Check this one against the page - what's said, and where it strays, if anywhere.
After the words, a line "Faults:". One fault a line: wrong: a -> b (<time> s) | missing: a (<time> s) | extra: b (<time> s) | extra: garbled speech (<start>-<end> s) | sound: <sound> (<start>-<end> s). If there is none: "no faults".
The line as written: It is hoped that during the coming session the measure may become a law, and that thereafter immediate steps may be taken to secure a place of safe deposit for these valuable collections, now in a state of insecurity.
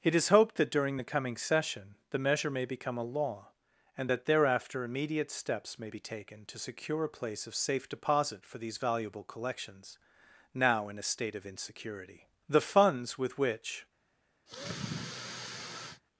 It is hoped that during the coming session the measure may become a law, and that thereafter immediate steps may be taken to secure a place of safe deposit for these valuable collections, now in a state of insecurity. The funds with which
Faults:
extra: The funds with which (12.5 s)
sound: sigh (14.5-16.0 s)